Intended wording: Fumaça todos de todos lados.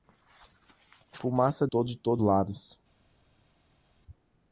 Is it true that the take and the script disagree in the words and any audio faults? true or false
false